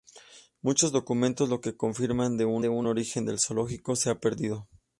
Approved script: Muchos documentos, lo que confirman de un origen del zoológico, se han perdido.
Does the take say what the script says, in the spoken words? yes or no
no